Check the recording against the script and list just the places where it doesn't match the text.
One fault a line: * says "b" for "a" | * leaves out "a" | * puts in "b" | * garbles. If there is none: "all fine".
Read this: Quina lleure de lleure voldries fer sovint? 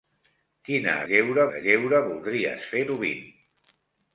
all fine